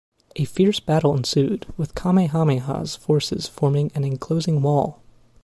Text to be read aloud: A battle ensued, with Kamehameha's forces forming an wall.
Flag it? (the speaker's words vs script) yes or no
yes